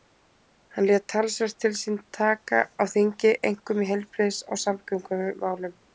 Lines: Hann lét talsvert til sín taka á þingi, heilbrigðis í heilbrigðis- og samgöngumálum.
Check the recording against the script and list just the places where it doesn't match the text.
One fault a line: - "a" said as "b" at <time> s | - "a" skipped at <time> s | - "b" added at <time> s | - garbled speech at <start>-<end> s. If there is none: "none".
- "heilbrigðis" said as "einkum" at 3.5 s